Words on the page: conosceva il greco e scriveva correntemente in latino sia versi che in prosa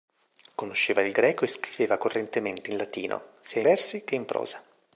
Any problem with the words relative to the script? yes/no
no